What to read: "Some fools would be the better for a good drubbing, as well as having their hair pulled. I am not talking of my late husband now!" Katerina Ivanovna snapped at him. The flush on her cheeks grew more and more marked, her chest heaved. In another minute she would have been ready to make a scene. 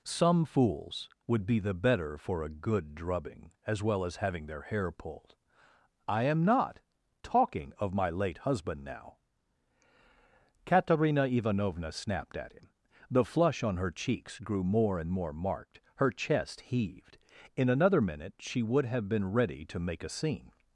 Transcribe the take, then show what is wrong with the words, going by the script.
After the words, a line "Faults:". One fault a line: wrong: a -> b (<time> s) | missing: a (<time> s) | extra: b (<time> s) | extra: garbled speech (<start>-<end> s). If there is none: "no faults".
"Some fools would be the better for a good drubbing, as well as having their hair pulled. I am not talking of my late husband now!" Katerina Ivanovna snapped at him. The flush on her cheeks grew more and more marked, her chest heaved. In another minute she would have been ready to make a scene.
Faults:
no faults